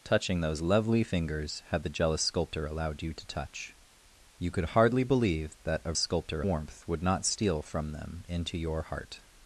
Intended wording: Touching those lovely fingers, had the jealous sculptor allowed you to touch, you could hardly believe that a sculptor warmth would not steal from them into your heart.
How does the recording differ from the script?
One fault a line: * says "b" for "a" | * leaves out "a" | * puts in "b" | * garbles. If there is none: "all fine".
all fine